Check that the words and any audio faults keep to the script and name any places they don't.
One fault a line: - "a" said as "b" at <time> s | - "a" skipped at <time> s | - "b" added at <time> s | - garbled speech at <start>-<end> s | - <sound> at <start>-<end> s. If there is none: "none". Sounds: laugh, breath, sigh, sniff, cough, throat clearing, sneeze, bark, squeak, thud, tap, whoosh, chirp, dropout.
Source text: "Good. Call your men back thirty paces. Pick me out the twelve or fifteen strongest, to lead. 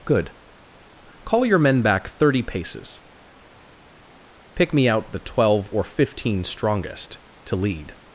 none